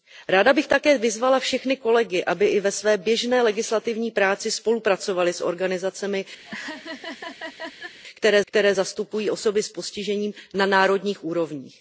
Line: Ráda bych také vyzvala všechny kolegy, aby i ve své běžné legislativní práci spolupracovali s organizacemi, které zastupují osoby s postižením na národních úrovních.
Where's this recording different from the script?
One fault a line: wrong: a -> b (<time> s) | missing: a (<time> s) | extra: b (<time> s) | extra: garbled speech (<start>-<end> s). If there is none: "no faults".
extra: které (8.5 s)